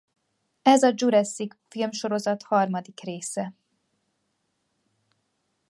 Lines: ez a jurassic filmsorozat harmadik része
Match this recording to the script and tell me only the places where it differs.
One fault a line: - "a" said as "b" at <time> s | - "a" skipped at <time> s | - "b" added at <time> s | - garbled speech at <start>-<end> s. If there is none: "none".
none